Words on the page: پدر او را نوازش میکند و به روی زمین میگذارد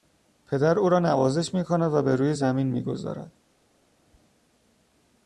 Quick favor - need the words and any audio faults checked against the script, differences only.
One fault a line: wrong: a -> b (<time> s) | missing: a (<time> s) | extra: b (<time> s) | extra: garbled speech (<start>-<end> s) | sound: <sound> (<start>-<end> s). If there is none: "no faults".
no faults